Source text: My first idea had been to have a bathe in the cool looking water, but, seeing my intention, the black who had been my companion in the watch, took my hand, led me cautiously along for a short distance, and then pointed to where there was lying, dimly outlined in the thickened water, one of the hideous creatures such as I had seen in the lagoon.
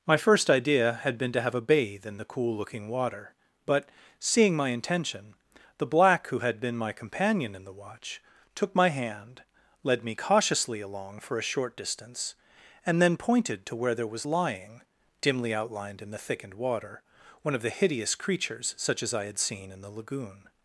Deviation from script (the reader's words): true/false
false